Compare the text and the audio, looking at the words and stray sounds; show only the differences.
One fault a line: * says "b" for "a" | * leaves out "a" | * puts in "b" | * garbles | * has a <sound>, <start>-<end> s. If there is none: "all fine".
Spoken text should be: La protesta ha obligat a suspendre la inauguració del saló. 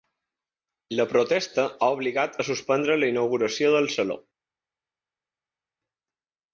all fine